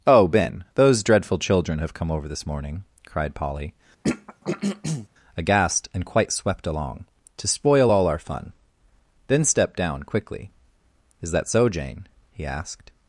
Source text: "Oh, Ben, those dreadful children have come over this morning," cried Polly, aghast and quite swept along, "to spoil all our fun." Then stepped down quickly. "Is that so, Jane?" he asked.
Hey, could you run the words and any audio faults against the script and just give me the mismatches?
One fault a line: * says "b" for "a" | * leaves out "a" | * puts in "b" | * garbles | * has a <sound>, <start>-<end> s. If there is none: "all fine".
* has a throat clearing, 4.0-5.1 s